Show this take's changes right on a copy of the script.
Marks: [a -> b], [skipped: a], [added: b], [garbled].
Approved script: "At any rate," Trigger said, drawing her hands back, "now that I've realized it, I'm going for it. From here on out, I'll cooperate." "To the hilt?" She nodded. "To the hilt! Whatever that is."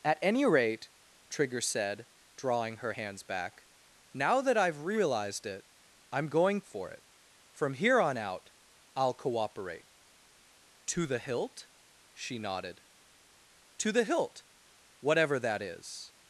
"At any rate," Trigger said, drawing her hands back, "now that I've realized it, I'm going for it. From here on out, I'll cooperate." "To the hilt?" She nodded. "To the hilt! Whatever that is."